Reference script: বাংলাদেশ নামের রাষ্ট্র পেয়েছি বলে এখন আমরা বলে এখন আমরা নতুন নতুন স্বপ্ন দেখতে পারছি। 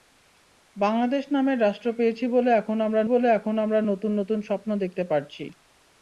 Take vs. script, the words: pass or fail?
pass